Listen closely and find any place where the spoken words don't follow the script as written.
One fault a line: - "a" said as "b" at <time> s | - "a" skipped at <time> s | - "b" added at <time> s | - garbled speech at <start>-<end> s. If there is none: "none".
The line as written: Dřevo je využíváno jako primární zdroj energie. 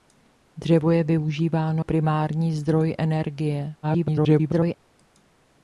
- "jako" skipped at 1.9 s
- garbled speech at 3.8-4.7 s